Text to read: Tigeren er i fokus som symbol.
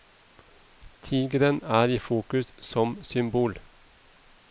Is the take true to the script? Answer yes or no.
yes